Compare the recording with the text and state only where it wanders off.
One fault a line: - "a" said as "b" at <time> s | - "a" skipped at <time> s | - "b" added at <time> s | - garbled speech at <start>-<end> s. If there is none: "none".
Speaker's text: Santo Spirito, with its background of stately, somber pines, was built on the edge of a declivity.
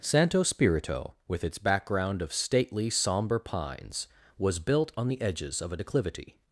- "edge" said as "edges" at 5.2 s